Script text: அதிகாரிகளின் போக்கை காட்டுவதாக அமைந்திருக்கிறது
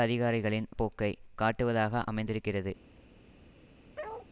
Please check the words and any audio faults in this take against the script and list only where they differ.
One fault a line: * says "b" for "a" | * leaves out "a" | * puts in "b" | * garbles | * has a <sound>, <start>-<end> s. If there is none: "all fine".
* has a bark, 4.0-4.3 s